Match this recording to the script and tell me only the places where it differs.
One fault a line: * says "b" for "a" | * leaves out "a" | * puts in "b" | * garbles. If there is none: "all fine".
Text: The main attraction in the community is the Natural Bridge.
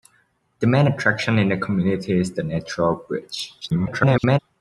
* garbles